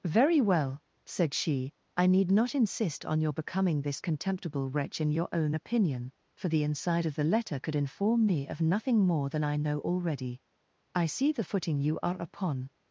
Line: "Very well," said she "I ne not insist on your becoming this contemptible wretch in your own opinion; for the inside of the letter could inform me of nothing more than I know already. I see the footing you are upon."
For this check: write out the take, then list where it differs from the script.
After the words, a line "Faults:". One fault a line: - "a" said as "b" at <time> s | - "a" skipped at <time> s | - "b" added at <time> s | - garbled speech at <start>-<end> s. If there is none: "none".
"Very well," said she "I need not insist on your becoming this contemptible wretch in your own opinion; for the inside of the letter could inform me of nothing more than I know already. I see the footing you are upon."
Faults:
- "ne" said as "need" at 2.1 s